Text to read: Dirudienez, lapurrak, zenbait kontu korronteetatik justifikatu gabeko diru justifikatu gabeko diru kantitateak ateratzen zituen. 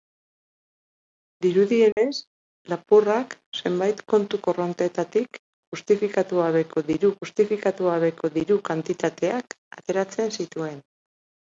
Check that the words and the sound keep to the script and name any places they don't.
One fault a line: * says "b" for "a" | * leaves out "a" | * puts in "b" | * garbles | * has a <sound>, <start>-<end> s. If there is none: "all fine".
* has a dropout, 1.9-2.0 s